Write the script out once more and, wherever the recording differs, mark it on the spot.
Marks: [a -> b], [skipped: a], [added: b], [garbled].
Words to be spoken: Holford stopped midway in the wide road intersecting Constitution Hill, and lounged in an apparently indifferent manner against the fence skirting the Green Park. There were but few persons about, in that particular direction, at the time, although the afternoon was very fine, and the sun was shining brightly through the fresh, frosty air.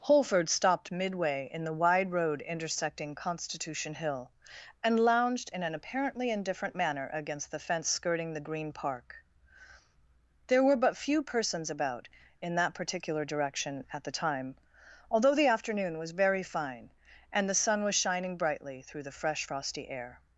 Holford stopped midway in the wide road intersecting Constitution Hill, and lounged in an apparently indifferent manner against the fence skirting the Green Park. There were but few persons about, in that particular direction, at the time, although the afternoon was very fine, and the sun was shining brightly through the fresh, frosty air.